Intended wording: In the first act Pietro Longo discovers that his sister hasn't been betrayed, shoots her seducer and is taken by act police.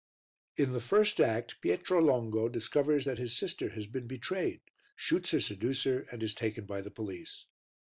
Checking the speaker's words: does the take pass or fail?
fail